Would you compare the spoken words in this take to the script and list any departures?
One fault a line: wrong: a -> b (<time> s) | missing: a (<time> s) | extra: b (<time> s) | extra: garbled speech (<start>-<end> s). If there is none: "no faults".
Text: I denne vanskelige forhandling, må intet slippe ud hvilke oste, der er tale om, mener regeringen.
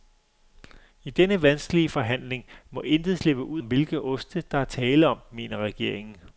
no faults